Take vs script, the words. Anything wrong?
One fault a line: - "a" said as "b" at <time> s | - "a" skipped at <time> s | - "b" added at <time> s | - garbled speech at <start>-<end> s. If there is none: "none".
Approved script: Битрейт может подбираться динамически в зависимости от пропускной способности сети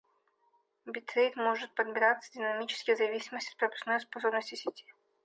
none